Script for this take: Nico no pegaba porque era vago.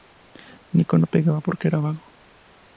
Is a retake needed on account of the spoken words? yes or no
no